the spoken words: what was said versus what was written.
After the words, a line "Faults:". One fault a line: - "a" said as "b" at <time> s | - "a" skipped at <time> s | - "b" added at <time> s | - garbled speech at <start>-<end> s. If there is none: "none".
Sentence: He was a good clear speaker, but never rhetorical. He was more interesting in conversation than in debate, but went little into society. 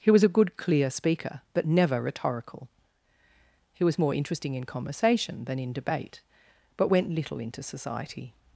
He was a good clear speaker, but never rhetorical. He was more interesting in conversation than in debate, but went little into society.
Faults:
none